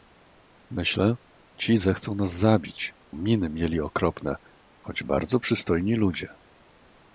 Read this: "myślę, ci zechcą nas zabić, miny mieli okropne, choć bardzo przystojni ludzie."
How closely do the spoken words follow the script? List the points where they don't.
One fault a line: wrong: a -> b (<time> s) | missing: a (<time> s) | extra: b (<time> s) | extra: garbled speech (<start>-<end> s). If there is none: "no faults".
no faults